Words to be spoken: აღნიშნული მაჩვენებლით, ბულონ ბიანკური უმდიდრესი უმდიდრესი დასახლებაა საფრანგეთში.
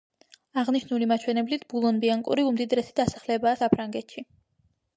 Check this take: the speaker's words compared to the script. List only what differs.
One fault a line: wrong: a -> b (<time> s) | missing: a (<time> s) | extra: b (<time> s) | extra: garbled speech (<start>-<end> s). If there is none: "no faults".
missing: უმდიდრესი (3.0 s)